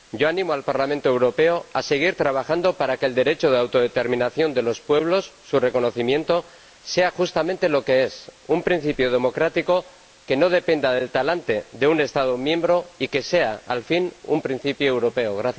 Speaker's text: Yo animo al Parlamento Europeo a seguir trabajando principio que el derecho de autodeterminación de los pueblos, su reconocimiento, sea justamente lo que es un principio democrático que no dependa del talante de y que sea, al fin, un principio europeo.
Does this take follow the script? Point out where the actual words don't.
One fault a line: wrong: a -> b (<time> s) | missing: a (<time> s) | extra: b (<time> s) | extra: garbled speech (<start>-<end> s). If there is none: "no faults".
wrong: principio -> para (2.8 s)
extra: un Estado miembro (11.9 s)